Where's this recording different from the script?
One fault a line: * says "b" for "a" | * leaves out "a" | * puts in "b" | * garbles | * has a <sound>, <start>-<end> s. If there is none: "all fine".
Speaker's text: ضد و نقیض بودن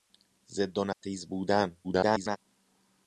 * has a dropout, 0.9-1.0 s
* garbles